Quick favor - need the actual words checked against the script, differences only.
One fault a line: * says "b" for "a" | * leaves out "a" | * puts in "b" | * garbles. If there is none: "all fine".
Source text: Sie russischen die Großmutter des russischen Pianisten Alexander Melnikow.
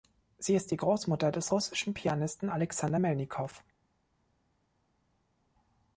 * says "ist" for "russischen"